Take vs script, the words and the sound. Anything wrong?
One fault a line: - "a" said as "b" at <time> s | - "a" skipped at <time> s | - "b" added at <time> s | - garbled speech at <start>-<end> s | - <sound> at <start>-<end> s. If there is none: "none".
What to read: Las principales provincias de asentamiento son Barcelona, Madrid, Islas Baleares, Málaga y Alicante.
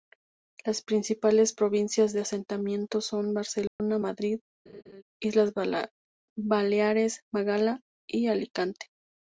- dropout at 3.7-3.8 s
- laugh at 4.7-5.0 s